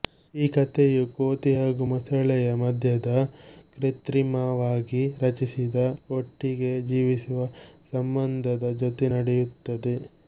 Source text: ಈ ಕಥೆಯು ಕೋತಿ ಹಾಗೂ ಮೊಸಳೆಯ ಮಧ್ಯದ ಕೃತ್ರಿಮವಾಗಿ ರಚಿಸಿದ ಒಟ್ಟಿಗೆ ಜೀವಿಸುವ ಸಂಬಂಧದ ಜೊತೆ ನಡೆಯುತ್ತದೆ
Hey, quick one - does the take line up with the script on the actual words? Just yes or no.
yes